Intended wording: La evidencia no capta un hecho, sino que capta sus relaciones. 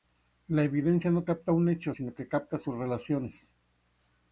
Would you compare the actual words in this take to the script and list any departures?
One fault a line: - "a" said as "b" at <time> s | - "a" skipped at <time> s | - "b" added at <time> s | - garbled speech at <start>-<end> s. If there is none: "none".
none